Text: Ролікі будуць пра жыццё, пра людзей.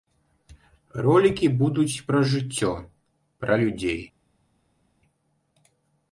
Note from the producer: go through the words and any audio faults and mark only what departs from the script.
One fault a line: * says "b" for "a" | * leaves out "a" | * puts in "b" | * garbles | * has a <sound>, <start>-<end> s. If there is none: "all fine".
all fine